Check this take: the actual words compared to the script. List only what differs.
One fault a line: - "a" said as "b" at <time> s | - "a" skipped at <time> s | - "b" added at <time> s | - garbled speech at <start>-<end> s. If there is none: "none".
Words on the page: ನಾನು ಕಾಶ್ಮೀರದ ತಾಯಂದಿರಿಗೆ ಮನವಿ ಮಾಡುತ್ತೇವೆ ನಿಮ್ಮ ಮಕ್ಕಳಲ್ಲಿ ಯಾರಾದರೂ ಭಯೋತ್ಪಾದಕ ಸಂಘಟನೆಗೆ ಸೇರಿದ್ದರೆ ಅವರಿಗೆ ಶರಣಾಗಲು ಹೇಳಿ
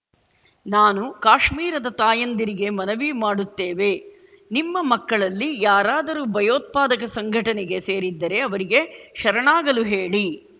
none